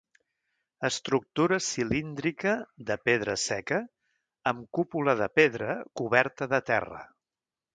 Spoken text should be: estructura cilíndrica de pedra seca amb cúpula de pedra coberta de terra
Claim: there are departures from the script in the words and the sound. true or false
false